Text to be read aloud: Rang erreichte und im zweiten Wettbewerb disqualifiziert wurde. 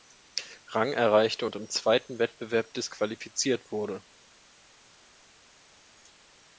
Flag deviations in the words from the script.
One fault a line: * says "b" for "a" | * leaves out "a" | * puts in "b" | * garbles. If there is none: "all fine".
all fine